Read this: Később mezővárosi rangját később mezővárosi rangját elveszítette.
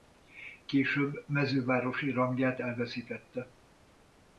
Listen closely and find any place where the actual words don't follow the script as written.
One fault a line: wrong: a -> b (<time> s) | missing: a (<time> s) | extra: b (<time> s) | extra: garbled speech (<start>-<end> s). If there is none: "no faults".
missing: később mezővárosi rangját (2.6 s)